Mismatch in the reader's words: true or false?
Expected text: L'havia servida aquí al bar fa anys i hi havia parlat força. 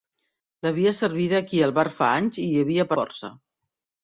true